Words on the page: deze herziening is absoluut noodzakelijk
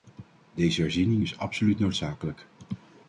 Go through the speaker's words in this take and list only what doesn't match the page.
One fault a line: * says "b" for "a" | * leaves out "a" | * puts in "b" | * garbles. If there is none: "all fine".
all fine